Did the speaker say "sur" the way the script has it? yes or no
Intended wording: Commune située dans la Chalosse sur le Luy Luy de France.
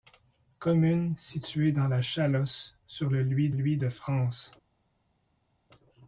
yes